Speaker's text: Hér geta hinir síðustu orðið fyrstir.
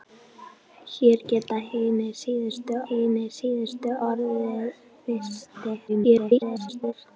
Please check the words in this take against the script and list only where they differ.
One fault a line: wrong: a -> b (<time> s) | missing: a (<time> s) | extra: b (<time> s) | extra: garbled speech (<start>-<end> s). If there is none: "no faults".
extra: hinir síðustu (2.9 s)
extra: garbled speech (5.9-6.9 s)